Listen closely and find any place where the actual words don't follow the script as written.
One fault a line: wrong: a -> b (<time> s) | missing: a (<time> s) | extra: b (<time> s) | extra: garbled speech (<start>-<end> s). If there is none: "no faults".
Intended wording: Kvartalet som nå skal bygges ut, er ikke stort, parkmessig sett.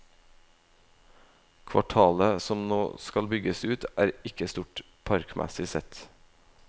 no faults